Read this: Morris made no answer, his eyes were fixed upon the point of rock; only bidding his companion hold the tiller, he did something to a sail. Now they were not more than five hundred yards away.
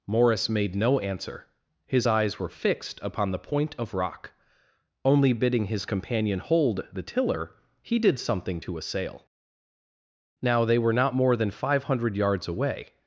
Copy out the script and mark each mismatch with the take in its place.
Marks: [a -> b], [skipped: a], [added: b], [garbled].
Morris made no answer, his eyes were fixed upon the point of rock; only bidding his companion hold the tiller, he did something to a sail. Now they were not more than five hundred yards away.